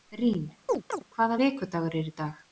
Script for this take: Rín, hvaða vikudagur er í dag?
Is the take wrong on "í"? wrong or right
right